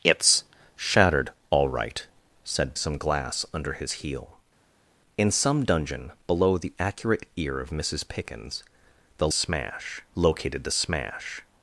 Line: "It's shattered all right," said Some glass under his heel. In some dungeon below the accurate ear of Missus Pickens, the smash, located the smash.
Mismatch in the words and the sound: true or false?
false